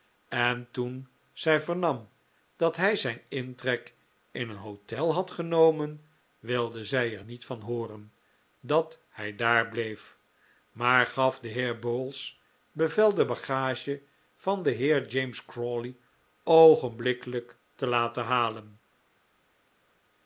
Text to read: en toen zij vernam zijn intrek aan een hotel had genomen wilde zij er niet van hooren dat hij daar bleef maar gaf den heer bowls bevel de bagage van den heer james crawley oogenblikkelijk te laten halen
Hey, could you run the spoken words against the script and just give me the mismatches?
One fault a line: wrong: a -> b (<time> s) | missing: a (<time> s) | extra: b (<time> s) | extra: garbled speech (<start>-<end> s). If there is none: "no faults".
extra: dat hij (2.5 s)
wrong: aan -> in (4.3 s)